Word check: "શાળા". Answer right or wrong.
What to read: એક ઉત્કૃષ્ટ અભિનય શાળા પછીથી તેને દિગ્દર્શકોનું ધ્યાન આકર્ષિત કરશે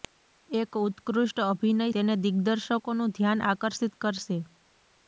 wrong